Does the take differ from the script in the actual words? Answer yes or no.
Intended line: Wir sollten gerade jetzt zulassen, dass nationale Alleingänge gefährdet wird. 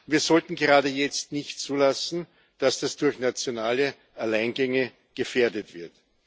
yes